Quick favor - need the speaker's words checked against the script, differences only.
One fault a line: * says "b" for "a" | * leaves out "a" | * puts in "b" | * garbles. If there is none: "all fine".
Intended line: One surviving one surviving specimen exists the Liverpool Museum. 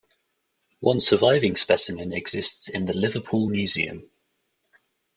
* leaves out "one surviving"
* puts in "in"